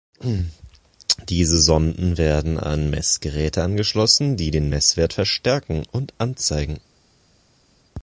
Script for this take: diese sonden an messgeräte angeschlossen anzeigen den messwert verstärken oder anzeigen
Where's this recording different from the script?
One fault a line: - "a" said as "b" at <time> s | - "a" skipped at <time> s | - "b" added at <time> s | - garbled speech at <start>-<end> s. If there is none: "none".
- "werden" added at 2.2 s
- "anzeigen" said as "die" at 4.4 s
- "oder" said as "und" at 5.9 s